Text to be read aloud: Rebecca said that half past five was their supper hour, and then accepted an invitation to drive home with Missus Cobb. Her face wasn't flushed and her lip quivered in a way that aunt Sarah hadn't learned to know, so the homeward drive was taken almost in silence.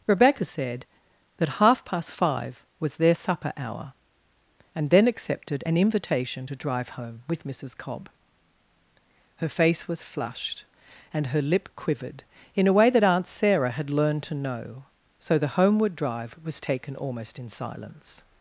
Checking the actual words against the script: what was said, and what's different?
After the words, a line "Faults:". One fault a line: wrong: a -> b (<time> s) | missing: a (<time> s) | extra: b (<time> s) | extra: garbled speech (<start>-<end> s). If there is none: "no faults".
Rebecca said that half past five was their supper hour, and then accepted an invitation to drive home with Missus Cobb. Her face was flushed and her lip quivered in a way that aunt Sarah had learned to know, so the homeward drive was taken almost in silence.
Faults:
wrong: wasn't -> was (9.9 s)
wrong: hadn't -> had (13.7 s)